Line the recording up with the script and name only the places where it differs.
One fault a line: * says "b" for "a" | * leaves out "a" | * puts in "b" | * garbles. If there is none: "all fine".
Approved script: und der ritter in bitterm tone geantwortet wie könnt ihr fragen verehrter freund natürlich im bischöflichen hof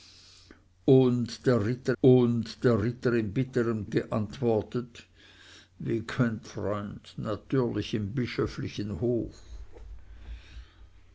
* puts in "und der ritter"
* leaves out "tone"
* leaves out "ihr fragen verehrter"